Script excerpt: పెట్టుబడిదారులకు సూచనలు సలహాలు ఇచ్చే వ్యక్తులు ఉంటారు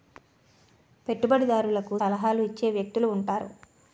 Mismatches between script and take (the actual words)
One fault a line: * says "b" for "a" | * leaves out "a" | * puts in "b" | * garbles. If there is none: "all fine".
* leaves out "సూచనలు"